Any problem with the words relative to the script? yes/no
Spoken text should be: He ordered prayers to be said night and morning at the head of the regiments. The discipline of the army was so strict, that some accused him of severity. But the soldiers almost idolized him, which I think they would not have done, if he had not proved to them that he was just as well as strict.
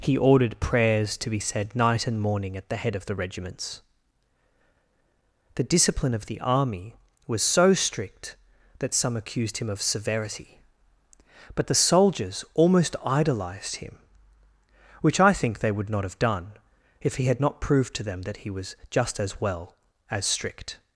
no